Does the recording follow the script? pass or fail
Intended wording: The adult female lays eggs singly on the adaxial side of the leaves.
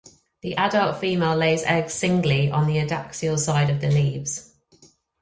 pass